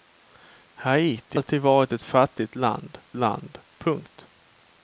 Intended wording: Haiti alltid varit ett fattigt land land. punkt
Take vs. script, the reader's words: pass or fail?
pass